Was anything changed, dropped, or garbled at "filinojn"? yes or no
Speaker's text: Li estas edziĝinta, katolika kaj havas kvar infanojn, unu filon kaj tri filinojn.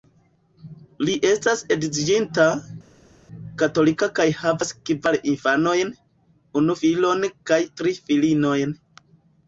no